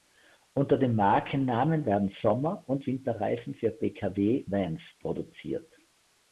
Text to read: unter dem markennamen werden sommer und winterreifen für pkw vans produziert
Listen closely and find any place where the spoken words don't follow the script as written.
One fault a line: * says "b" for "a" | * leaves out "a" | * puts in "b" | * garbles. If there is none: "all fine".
all fine